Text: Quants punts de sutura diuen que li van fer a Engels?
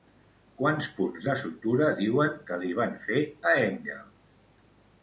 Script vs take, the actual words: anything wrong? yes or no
no